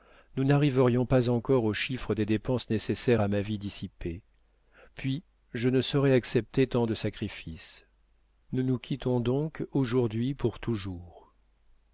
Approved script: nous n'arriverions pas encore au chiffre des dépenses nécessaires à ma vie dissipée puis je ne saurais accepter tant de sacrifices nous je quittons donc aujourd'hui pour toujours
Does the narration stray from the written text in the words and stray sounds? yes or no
yes